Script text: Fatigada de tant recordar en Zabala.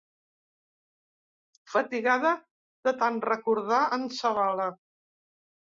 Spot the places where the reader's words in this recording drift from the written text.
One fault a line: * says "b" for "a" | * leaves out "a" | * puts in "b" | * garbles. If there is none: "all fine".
all fine